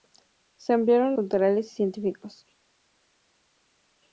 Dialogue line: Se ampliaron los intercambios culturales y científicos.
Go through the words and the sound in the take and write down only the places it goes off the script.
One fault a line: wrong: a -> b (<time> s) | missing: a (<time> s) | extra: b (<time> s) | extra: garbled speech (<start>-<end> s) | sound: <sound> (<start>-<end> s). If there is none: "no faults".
missing: los intercambios (1.1 s)